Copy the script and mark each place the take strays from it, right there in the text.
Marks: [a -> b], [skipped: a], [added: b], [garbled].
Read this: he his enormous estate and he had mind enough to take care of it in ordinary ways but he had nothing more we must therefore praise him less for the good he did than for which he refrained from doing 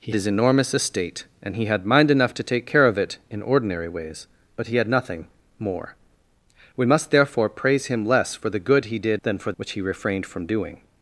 he his enormous estate and he had mind enough to take care of it in ordinary ways but he had nothing more we must therefore praise him less for the good he did than for which he refrained from doing